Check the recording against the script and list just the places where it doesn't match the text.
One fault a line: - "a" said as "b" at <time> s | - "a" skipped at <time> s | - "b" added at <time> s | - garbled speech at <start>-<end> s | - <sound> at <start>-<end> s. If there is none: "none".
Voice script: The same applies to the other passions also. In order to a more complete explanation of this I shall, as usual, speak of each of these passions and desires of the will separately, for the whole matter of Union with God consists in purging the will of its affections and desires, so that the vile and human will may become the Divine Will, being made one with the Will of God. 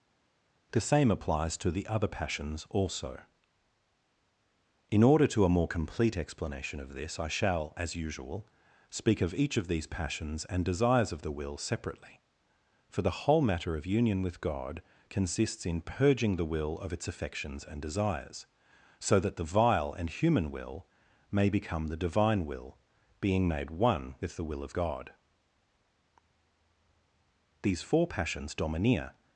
- "These four Passions domineer" added at 27.6 s